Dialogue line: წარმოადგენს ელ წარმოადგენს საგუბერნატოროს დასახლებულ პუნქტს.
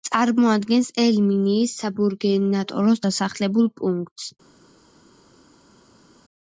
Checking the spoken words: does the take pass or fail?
fail